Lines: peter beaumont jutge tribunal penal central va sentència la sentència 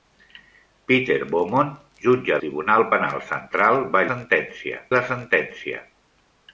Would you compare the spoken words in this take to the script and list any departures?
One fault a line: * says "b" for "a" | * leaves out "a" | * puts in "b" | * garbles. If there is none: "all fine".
all fine